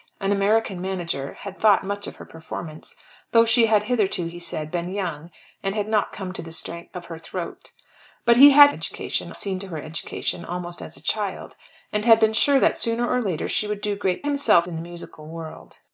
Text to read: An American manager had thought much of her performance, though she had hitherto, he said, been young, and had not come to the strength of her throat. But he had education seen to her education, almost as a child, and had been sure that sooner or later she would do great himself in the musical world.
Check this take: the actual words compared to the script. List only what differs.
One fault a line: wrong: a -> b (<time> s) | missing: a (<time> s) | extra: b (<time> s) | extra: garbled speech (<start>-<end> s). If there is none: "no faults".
no faults